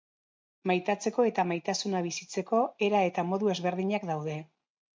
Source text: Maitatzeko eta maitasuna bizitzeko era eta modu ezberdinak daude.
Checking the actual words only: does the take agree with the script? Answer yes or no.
yes